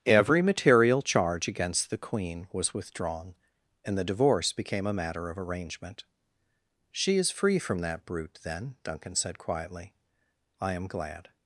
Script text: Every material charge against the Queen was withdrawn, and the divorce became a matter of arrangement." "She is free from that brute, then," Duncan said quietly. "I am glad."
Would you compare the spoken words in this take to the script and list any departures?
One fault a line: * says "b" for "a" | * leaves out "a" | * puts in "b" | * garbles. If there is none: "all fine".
all fine